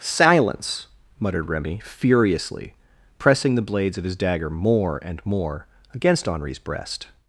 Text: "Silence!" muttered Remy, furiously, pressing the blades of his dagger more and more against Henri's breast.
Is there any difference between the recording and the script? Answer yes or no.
no